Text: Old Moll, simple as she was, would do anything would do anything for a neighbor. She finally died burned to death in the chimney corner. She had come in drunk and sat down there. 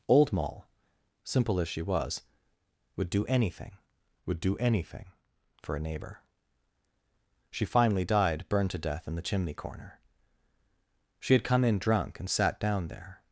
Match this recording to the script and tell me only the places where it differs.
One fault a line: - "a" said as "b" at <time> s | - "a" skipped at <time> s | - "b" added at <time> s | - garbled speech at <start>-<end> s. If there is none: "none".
none